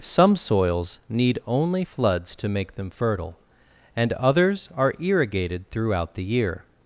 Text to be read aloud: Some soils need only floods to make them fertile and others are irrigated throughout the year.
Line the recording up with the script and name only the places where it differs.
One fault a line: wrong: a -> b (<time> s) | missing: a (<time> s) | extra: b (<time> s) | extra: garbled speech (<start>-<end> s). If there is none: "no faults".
no faults